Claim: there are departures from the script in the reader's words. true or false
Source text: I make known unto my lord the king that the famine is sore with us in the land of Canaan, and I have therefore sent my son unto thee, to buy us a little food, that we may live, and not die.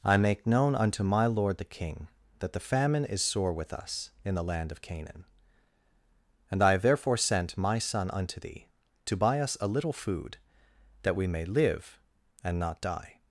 false